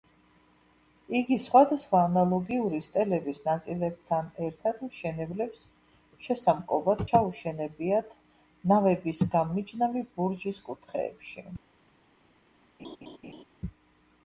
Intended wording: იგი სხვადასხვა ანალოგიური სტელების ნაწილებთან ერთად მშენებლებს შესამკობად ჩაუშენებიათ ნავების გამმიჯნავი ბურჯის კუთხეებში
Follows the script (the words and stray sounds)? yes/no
no